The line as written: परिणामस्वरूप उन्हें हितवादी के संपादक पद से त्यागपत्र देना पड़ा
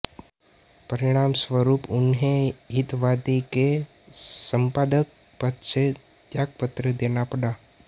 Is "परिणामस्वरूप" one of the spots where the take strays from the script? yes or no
no